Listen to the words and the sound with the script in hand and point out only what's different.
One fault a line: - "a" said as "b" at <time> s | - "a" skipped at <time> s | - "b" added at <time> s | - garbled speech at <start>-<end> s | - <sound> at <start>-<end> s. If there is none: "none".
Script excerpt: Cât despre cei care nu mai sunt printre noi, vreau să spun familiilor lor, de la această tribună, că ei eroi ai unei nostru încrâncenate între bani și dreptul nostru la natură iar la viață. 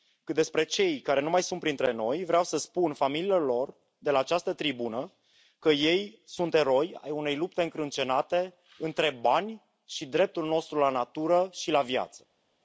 - "sunt" added at 6.2 s
- "nostru" said as "lupte" at 7.3 s
- "iar" said as "și" at 11.5 s